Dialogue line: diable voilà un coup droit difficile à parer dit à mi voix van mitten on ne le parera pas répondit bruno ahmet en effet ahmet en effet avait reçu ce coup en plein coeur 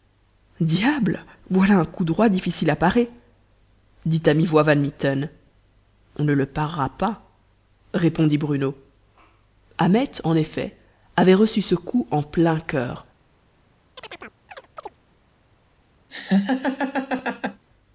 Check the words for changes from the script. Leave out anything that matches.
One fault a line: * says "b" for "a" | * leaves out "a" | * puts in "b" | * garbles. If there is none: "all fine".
* leaves out "ahmet en effet"